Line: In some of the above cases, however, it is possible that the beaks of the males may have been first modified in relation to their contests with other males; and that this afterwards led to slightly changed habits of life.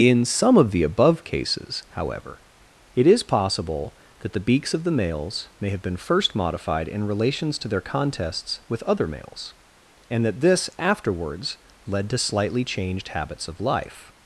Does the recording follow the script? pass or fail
fail